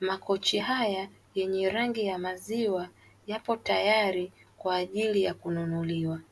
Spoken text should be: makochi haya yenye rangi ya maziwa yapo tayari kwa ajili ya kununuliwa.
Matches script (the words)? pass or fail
pass